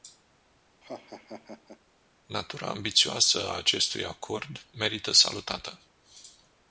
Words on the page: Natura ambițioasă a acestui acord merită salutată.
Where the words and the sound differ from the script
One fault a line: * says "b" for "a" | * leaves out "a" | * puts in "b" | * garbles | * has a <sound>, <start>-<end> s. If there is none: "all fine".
* has a laugh, 0.8-1.8 s